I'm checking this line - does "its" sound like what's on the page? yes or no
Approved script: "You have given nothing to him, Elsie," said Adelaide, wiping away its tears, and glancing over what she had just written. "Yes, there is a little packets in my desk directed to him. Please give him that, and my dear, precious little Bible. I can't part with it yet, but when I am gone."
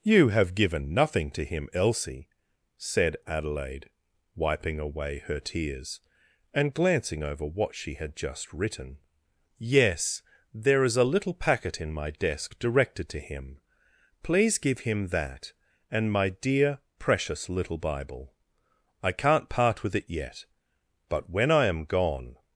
no